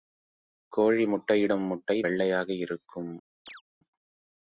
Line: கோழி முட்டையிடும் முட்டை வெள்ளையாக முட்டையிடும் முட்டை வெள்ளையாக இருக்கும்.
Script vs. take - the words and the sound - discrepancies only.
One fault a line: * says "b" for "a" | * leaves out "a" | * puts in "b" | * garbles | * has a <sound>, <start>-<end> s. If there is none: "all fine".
* leaves out "முட்டையிடும் முட்டை வெள்ளையாக"
* has a chirp, 3.5-3.6 s